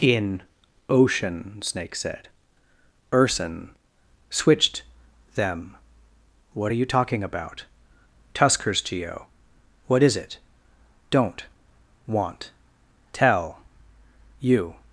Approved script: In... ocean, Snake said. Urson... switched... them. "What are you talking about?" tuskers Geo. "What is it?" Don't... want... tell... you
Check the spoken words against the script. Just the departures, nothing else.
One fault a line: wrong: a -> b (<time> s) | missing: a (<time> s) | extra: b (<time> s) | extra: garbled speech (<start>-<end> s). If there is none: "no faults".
no faults